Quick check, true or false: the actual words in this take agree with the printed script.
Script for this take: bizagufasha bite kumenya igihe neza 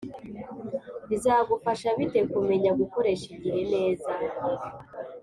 false